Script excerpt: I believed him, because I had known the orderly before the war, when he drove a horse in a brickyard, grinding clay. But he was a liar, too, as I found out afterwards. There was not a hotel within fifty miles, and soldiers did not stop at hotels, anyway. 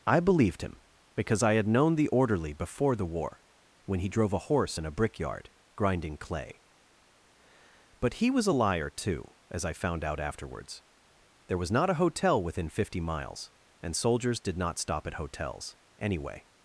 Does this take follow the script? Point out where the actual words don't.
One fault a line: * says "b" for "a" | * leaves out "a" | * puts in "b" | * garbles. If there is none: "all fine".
all fine